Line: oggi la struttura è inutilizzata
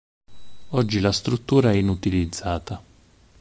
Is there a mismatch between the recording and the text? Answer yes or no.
no